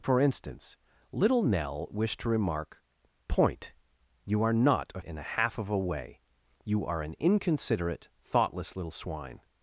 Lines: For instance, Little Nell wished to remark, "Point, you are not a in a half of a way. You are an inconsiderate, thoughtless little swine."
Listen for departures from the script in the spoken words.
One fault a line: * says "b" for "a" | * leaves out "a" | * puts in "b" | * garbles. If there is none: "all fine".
all fine